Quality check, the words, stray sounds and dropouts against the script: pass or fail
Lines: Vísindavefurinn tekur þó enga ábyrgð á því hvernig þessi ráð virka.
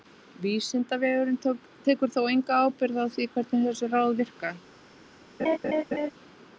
fail